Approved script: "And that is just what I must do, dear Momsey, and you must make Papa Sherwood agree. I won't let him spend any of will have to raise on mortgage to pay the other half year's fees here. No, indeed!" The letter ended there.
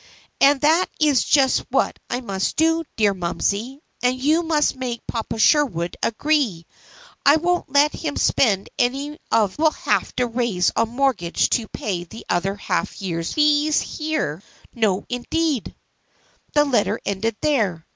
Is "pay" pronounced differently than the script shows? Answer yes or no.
no